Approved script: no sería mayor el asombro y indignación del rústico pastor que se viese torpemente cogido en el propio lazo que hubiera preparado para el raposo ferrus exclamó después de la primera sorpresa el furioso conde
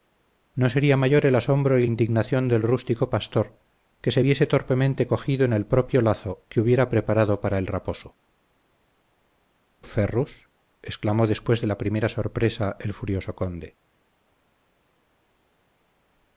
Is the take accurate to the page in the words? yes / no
yes